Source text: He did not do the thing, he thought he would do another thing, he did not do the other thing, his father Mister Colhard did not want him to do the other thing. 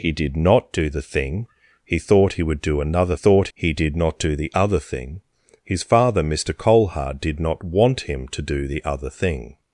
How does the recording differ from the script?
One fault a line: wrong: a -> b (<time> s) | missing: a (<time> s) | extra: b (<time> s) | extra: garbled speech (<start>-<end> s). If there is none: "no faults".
wrong: thing -> thought (3.1 s)